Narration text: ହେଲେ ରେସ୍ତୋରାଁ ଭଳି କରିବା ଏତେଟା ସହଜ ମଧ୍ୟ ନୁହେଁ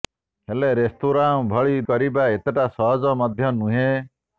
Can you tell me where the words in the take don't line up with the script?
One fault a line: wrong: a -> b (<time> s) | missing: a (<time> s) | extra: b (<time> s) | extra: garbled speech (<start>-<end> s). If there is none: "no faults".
no faults